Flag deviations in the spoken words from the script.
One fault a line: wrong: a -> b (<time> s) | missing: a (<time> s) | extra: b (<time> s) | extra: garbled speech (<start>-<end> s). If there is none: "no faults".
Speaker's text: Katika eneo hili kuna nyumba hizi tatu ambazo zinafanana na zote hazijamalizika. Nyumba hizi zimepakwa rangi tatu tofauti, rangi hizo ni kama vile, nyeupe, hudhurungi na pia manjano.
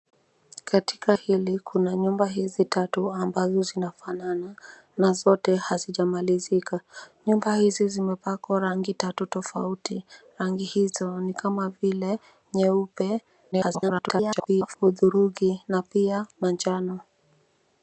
missing: eneo (1.1 s)
extra: garbled speech (13.5-14.8 s)